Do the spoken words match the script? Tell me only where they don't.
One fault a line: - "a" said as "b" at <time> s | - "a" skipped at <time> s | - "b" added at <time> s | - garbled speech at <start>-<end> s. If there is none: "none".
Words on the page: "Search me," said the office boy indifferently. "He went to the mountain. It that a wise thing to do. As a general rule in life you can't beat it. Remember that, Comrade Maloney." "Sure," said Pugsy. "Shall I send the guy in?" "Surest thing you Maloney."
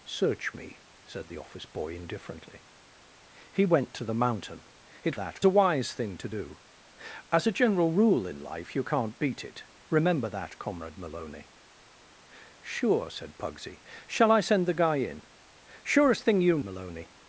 none